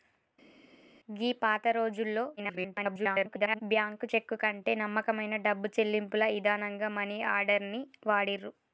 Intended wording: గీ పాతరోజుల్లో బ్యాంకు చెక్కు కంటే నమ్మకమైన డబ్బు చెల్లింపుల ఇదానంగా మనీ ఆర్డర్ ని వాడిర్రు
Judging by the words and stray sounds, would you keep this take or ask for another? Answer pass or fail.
fail